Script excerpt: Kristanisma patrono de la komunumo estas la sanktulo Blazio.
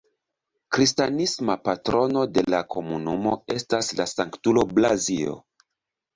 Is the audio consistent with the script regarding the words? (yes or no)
yes